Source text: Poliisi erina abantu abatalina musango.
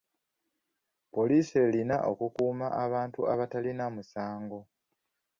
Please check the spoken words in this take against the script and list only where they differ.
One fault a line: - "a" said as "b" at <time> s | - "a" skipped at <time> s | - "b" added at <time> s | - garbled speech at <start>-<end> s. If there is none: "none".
- "okukuuma" added at 2.1 s